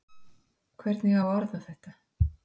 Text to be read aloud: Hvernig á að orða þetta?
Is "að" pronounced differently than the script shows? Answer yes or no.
no